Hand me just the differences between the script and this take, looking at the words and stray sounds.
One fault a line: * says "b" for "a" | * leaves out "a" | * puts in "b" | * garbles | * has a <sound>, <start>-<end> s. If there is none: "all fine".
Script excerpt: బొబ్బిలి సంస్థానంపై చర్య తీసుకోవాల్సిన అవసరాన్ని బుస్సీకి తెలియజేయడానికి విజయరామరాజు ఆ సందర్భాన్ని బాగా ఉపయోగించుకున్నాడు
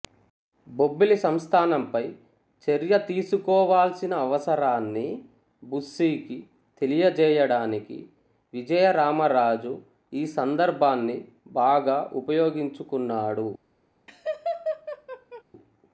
* says "ఈ" for "ఆ"
* has a laugh, 14.1-15.4 s